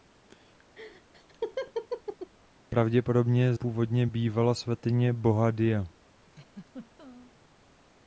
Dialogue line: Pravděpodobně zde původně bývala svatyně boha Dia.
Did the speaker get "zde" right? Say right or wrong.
wrong